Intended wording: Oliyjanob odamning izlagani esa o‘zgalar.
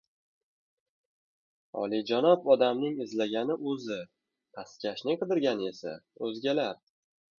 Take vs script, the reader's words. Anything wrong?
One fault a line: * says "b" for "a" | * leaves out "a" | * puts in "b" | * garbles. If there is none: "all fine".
* puts in "o‘zi pastkashning qidirgani"